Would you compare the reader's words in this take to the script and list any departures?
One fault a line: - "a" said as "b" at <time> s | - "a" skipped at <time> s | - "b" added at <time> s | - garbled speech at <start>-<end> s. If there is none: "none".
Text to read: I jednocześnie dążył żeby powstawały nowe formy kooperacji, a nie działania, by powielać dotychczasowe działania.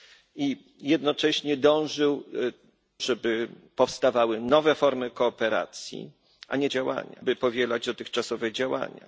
none